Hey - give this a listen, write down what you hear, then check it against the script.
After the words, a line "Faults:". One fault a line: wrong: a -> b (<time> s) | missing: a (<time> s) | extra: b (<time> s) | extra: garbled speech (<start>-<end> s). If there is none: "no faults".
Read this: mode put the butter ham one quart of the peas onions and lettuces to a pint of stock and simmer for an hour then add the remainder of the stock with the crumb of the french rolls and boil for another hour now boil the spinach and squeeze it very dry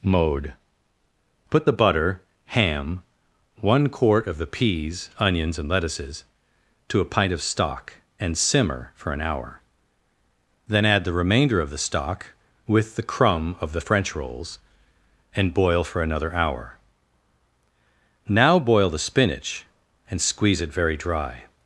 mode put the butter ham one quart of the peas onions and lettuces to a pint of stock and simmer for an hour then add the remainder of the stock with the crumb of the french rolls and boil for another hour now boil the spinach and squeeze it very dry
Faults:
no faults